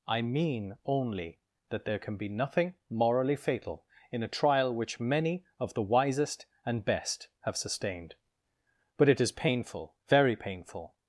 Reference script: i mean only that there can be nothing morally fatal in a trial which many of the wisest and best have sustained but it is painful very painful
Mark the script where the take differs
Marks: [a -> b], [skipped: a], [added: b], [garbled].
i mean only that there can be nothing morally fatal in a trial which many of the wisest and best have sustained but it is painful very painful